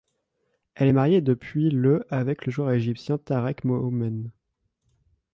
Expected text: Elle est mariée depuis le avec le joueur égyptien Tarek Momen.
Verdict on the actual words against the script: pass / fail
pass